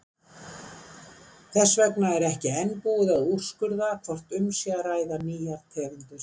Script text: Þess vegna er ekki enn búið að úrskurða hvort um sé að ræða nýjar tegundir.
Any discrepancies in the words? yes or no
no